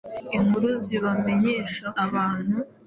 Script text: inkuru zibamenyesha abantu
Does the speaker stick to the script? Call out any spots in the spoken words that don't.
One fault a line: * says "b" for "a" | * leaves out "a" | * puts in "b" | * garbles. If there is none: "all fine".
all fine